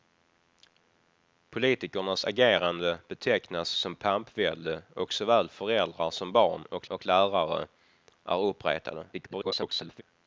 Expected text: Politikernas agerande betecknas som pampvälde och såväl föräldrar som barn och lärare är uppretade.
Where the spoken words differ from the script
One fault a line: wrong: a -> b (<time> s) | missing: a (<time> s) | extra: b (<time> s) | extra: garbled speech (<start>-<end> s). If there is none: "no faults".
extra: och (6.9 s)
extra: garbled speech (9.1-10.0 s)